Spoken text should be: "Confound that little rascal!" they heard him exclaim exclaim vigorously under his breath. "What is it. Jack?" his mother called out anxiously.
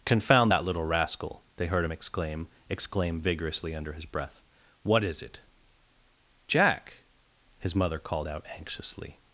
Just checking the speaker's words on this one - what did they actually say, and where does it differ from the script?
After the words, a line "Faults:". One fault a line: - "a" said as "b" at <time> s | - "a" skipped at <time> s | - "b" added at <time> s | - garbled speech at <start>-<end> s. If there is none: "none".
"Confound that little rascal!" they heard him exclaim exclaim vigorously under his breath. "What is it. Jack?" his mother called out anxiously.
Faults:
none